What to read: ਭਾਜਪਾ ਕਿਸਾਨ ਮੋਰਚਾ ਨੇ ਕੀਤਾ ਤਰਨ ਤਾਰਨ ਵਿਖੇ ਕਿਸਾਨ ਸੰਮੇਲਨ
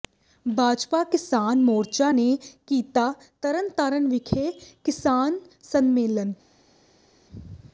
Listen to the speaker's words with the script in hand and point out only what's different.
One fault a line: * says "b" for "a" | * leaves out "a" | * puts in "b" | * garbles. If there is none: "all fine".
all fine